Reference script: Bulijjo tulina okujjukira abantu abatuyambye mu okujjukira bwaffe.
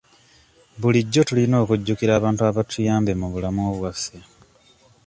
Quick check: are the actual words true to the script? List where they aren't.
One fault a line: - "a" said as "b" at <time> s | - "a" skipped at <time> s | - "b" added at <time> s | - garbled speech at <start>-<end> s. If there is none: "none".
- "okujjukira" said as "bulamu" at 3.3 s